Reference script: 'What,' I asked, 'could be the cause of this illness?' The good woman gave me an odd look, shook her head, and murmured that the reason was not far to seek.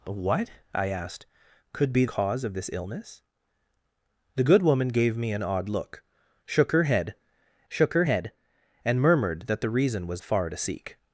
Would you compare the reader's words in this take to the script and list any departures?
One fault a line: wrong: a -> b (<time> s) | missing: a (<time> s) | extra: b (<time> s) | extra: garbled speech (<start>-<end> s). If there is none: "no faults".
missing: the (2.0 s)
extra: shook her head (7.7 s)
missing: not (10.2 s)